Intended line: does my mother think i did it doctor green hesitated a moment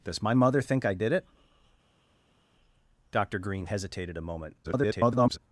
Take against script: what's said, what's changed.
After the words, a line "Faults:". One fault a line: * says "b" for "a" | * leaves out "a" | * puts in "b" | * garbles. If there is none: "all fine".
does my mother think i did it doctor green hesitated a moment [garbled]
Faults:
* garbles